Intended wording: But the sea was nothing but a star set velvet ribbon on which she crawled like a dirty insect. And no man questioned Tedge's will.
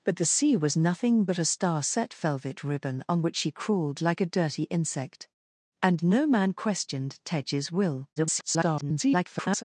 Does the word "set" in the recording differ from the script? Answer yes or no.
no